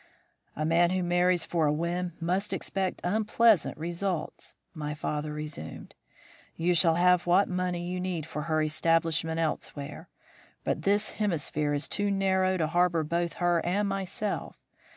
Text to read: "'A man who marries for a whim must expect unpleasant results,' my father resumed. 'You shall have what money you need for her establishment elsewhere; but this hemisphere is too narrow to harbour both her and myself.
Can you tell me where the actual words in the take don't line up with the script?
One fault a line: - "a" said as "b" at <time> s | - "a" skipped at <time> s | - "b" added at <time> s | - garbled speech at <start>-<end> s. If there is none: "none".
none